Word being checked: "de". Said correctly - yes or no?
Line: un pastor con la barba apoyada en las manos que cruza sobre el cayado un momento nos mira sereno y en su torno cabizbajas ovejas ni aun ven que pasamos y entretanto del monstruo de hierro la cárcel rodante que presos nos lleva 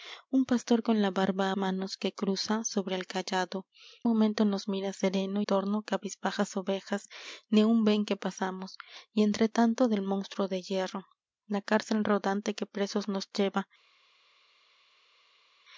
yes